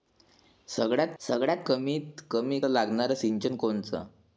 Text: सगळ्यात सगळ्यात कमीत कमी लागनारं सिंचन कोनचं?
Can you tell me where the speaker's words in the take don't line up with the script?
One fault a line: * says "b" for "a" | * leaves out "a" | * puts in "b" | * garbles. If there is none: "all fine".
all fine